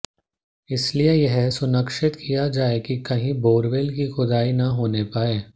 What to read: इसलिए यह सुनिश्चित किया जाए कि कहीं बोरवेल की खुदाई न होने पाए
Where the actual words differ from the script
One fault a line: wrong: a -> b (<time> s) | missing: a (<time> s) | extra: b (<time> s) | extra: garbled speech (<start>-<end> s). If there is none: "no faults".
no faults